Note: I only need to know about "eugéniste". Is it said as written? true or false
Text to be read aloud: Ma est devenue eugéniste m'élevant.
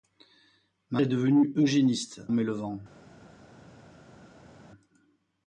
true